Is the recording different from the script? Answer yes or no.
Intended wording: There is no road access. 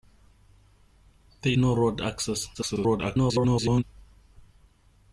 yes